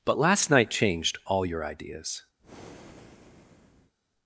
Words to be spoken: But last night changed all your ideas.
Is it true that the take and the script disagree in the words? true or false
false